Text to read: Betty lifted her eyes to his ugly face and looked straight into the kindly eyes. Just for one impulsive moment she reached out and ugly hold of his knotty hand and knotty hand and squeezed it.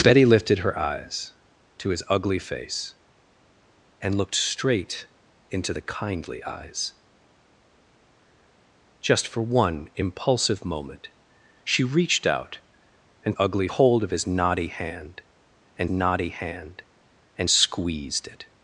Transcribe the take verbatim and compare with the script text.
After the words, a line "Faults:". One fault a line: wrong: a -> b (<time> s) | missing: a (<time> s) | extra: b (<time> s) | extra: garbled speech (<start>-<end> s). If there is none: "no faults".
Betty lifted her eyes to his ugly face and looked straight into the kindly eyes. Just for one impulsive moment she reached out and ugly hold of his knotty hand and knotty hand and squeezed it.
Faults:
no faults